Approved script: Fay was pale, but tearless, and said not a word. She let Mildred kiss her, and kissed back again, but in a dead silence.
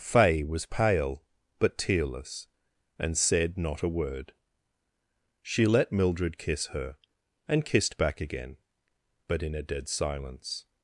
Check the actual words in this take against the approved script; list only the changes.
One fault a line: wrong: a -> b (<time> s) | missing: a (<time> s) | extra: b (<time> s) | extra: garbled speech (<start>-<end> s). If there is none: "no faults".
no faults